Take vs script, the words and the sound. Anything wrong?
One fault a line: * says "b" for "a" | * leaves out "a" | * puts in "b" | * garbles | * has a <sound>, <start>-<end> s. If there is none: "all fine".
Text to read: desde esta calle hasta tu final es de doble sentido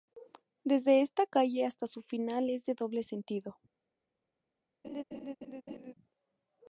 * says "su" for "tu"
* has a laugh, 4.8-5.9 s